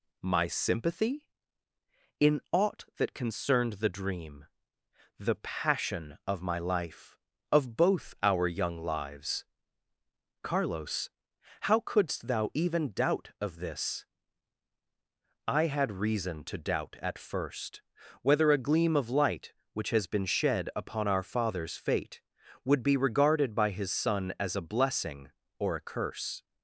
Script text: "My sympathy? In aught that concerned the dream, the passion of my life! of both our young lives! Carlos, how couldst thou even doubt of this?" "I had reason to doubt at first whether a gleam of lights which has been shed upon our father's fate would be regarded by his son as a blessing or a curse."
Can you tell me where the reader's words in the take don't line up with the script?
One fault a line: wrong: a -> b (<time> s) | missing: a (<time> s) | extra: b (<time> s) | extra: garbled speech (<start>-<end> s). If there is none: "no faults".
wrong: lights -> light (19.1 s)